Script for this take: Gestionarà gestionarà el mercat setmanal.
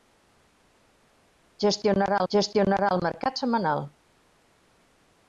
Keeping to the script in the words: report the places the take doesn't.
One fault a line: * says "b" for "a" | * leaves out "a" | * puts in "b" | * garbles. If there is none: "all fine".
all fine